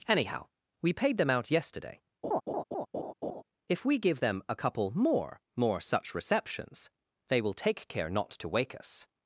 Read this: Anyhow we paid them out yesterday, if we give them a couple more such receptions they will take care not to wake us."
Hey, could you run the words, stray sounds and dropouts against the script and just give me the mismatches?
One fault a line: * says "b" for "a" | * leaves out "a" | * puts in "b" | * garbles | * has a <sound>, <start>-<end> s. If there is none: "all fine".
* has a laugh, 2.2-3.4 s
* puts in "more"